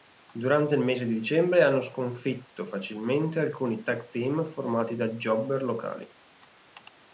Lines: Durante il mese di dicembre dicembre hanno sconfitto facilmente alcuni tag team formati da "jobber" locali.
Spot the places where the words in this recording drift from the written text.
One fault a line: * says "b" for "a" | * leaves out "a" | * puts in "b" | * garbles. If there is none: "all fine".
* leaves out "dicembre"